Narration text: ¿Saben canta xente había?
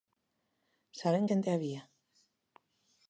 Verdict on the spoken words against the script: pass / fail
fail